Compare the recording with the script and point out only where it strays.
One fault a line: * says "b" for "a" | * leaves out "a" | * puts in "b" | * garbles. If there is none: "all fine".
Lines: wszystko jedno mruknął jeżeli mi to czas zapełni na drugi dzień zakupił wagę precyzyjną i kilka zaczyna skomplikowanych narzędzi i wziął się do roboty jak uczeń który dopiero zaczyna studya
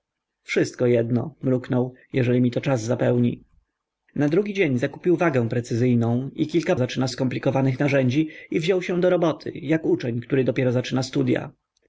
all fine